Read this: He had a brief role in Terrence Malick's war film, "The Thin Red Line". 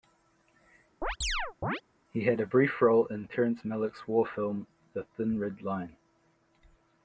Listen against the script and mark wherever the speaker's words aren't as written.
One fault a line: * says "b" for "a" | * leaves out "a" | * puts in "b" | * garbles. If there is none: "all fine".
all fine